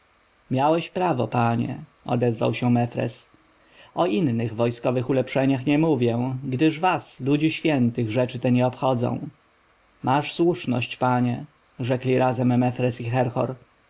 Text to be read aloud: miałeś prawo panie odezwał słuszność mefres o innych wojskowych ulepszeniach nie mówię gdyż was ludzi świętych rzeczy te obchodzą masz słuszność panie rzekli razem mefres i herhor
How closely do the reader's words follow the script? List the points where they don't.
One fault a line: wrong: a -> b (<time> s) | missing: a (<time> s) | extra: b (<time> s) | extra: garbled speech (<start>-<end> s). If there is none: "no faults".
wrong: słuszność -> się (2.5 s)
extra: nie (8.5 s)